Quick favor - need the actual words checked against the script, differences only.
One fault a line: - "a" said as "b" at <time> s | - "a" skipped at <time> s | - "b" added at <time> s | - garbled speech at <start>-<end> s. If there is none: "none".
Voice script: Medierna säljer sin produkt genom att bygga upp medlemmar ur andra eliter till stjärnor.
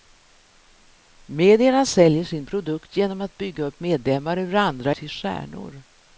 - "eliter" skipped at 4.9 s